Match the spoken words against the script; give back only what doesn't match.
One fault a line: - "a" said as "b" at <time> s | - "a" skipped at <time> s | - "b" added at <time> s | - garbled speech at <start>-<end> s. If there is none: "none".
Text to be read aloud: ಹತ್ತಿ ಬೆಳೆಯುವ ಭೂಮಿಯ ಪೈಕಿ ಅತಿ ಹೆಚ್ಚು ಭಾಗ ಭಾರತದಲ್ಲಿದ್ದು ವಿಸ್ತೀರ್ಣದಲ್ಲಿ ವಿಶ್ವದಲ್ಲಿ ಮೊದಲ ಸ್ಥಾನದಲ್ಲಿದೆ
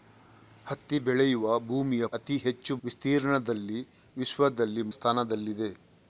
- "ಪೈಕಿ" skipped at 2.0 s
- "ಭಾಗ ಭಾರತದಲ್ಲಿದ್ದು" skipped at 2.8 s
- "ಮೊದಲ" skipped at 4.8 s